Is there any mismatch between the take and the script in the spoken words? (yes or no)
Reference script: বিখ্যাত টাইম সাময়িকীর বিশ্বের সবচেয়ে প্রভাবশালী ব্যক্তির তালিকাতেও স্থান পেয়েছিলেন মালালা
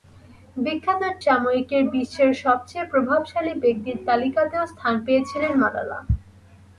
yes